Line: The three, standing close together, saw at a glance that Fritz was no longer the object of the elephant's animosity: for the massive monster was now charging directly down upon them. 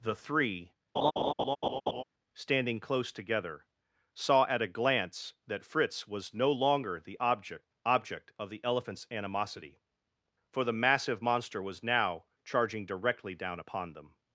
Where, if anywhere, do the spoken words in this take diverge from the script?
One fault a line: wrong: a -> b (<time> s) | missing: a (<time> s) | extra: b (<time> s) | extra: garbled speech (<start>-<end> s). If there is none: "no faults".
extra: object (7.8 s)